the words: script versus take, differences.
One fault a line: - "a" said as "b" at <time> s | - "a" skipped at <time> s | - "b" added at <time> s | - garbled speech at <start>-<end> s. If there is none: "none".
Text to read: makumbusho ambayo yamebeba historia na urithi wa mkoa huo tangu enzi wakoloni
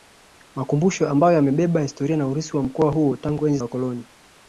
none